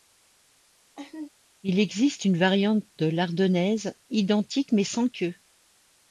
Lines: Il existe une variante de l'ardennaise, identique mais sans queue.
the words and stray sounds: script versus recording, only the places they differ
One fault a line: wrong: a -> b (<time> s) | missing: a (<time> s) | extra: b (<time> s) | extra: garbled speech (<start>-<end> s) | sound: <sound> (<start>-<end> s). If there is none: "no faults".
sound: laugh (1.0-1.3 s)